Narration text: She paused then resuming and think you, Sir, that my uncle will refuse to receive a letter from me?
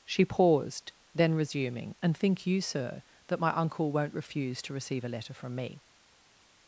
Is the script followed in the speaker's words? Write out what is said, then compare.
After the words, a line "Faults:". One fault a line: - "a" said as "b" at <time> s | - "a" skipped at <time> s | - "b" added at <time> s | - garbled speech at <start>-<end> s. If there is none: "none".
She paused then resuming and think you, Sir, that my uncle won't refuse to receive a letter from me?
Faults:
- "will" said as "won't" at 3.9 s